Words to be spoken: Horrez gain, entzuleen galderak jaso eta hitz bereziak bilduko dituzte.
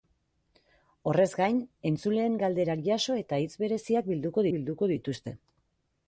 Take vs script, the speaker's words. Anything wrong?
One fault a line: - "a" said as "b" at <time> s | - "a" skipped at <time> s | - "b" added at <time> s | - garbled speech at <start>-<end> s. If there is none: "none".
- "bilduko" added at 4.5 s